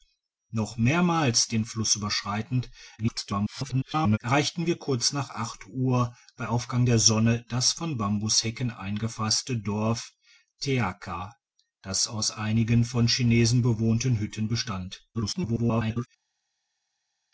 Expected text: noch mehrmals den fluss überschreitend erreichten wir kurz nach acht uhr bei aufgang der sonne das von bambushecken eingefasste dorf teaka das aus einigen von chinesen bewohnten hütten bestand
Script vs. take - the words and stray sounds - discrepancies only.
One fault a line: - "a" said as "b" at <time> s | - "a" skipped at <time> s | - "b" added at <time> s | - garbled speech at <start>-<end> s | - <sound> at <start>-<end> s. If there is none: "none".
- garbled speech at 3.0-4.2 s
- garbled speech at 15.1-16.1 s